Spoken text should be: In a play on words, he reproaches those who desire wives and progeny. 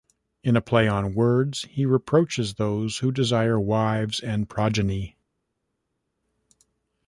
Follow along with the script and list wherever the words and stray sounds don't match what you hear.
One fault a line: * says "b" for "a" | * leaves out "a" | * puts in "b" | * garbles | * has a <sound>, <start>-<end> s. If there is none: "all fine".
all fine